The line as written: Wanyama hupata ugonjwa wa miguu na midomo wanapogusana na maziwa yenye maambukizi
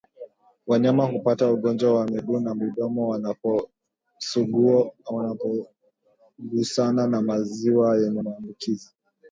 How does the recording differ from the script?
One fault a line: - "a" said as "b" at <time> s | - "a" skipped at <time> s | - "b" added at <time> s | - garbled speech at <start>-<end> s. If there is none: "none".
none